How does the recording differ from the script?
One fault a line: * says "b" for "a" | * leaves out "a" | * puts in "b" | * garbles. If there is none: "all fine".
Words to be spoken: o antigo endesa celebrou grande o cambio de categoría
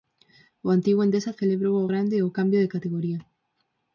* puts in "ao"